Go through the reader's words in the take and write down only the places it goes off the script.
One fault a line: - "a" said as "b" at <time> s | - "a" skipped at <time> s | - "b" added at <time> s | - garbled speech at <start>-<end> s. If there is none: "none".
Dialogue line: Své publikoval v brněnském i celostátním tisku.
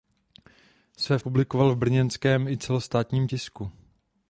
none